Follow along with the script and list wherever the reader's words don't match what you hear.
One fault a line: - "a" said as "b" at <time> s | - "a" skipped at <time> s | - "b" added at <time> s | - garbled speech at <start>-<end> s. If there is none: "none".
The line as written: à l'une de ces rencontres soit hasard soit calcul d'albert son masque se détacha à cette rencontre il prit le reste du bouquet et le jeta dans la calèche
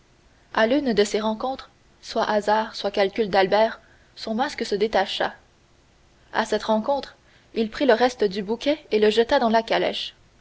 none